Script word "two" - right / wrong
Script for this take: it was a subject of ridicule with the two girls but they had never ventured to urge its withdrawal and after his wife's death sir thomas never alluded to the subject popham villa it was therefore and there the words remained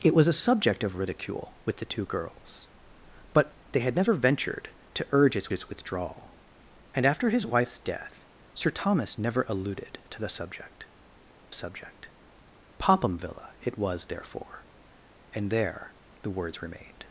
right